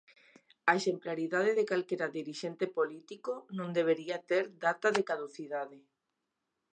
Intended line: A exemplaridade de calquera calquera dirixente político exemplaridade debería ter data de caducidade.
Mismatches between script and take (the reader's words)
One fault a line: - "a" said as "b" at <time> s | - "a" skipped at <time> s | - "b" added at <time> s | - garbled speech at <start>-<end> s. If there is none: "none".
- "calquera" skipped at 2.1 s
- "exemplaridade" said as "non" at 3.6 s